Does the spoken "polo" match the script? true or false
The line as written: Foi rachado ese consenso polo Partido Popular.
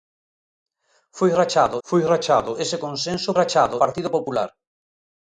false